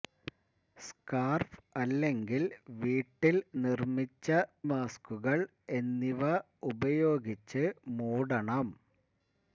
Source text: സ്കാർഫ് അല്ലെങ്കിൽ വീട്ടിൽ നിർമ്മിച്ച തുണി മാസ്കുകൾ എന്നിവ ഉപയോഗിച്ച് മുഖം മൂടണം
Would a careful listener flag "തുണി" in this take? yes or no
yes